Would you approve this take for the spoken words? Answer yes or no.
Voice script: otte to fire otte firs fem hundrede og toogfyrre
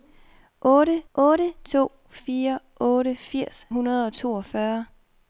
no